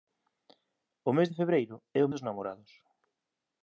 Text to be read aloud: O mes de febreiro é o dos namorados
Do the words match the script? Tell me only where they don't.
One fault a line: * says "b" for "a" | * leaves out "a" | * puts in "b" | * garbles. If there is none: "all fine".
all fine